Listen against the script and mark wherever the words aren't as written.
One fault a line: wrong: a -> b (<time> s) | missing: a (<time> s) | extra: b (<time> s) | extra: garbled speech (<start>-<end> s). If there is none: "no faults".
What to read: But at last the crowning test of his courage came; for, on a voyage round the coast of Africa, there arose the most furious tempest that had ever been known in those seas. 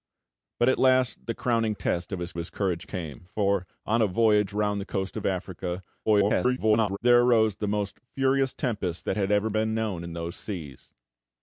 extra: his (2.3 s)
extra: garbled speech (6.1-7.0 s)